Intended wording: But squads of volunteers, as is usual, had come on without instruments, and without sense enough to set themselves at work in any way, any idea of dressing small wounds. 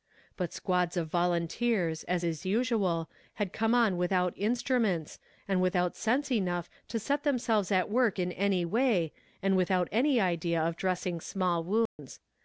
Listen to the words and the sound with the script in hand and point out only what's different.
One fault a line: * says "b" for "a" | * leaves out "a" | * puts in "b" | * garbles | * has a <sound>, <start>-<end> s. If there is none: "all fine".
* puts in "and without"
* has a dropout, 11.9-12.0 s